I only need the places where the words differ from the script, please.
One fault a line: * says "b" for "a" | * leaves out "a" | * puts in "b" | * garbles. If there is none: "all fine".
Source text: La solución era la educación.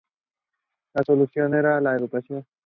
all fine